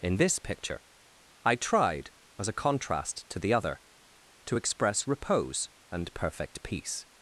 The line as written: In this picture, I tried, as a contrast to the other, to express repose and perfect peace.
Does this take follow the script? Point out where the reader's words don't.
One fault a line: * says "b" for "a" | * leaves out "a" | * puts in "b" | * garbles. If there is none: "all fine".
all fine